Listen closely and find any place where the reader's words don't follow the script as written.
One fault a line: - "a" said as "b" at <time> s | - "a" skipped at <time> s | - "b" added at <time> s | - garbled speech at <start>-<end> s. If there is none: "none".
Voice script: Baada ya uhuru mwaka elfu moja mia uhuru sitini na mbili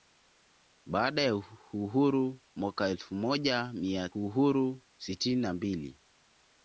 none